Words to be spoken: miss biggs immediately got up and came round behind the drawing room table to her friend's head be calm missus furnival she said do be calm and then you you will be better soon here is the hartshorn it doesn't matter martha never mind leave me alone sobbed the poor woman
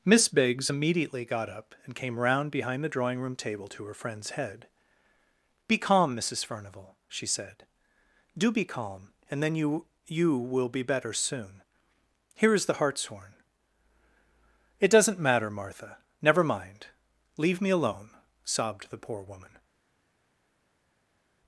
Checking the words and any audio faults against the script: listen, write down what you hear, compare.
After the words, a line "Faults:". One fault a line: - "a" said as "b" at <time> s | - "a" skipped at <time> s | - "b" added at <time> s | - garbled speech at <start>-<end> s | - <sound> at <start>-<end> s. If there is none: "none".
miss biggs immediately got up and came round behind the drawing room table to her friend's head be calm missus furnival she said do be calm and then you you will be better soon here is the hartshorn it doesn't matter martha never mind leave me alone sobbed the poor woman
Faults:
none